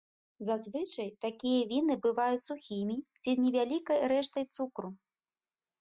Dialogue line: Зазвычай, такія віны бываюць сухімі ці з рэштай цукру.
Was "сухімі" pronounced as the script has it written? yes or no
yes